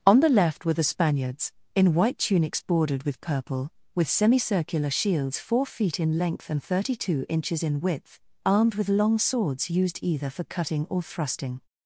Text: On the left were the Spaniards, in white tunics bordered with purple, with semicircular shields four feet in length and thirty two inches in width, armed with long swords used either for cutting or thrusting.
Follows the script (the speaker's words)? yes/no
yes